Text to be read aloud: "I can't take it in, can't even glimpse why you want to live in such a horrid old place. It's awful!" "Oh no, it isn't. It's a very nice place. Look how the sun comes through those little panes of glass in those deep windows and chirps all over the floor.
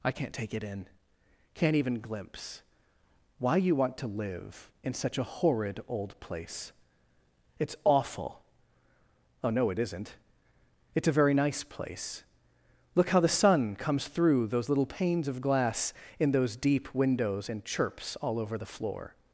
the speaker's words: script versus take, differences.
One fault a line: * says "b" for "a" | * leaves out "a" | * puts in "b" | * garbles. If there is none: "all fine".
all fine